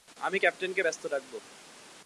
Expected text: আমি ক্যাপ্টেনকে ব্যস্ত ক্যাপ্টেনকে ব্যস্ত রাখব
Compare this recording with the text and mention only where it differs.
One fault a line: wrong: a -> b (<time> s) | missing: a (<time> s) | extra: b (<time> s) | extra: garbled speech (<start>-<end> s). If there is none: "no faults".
missing: ক্যাপ্টেনকে ব্যস্ত (1.0 s)